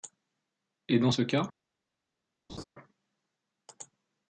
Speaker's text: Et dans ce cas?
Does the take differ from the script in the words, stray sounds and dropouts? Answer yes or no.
yes